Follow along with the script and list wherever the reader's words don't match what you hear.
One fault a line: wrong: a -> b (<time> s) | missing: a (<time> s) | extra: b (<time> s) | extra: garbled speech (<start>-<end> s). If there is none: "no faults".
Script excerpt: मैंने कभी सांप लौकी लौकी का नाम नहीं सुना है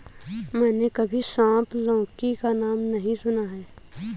missing: लौकी (2.3 s)